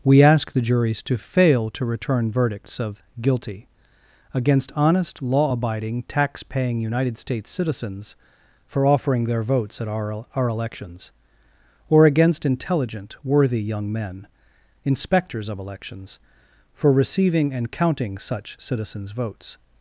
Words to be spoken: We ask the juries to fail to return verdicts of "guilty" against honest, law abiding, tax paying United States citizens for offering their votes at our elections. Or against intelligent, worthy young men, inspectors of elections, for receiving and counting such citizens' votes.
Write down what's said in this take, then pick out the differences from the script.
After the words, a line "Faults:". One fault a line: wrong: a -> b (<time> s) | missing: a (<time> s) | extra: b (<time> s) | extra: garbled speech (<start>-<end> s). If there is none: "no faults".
We ask the juries to fail to return verdicts of "guilty" against honest, law abiding, tax paying United States citizens for offering their votes at our our elections. Or against intelligent, worthy young men, inspectors of elections, for receiving and counting such citizens' votes.
Faults:
extra: our (10.4 s)